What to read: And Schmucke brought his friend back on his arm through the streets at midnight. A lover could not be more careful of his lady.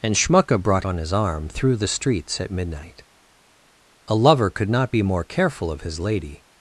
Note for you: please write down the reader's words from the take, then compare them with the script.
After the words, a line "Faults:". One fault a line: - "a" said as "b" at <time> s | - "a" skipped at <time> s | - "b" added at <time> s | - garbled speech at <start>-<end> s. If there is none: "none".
And Schmucke brought on his arm through the streets at midnight. A lover could not be more careful of his lady.
Faults:
- "his friend back" skipped at 0.8 s